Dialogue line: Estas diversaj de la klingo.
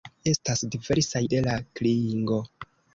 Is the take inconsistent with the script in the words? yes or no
no